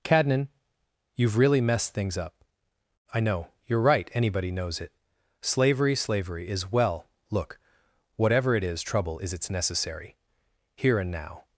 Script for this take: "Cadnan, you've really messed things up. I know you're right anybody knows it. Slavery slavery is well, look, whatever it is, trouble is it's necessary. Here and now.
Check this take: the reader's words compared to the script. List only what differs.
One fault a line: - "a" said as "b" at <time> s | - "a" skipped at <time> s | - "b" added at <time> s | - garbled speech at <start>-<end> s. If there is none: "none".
none